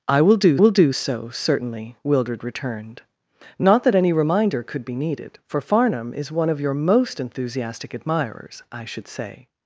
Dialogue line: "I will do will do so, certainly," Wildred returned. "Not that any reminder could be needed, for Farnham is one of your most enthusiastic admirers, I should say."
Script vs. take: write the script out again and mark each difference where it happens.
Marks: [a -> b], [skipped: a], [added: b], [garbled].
"I will do will do so, certainly," Wildred returned. "Not that any reminder could be needed, for Farnham is one of your most enthusiastic admirers, I should say."